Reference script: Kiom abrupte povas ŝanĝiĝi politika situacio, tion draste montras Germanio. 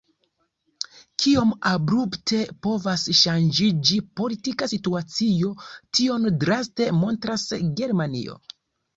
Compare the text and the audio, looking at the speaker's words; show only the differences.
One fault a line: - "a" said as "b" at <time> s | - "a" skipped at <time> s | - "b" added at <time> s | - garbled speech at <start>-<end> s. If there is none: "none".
none